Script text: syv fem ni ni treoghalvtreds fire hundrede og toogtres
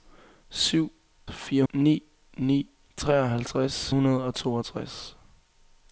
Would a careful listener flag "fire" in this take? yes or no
yes